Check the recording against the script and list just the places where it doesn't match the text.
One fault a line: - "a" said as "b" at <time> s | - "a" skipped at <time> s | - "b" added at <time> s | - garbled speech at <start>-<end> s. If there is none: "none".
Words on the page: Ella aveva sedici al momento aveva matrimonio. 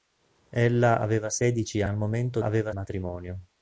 none